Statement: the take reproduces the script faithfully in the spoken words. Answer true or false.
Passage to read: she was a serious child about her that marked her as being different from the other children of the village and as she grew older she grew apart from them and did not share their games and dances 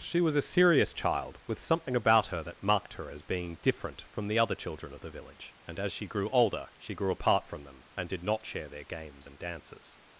false